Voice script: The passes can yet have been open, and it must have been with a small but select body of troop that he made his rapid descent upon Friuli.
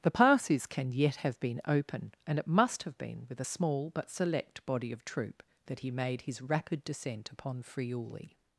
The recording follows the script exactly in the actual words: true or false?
true